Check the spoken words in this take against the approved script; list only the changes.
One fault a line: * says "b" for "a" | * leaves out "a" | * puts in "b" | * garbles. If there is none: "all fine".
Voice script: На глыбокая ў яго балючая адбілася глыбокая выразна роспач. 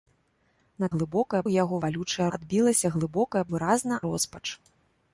all fine